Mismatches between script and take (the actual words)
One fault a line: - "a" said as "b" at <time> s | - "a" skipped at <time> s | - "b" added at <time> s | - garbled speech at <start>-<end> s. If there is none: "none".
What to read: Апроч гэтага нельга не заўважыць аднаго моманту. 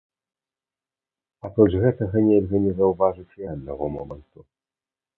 none